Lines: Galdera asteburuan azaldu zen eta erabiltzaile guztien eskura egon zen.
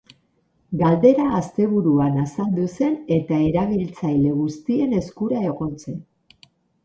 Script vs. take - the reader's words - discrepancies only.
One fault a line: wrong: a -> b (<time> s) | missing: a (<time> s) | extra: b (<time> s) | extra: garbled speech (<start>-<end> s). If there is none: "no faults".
no faults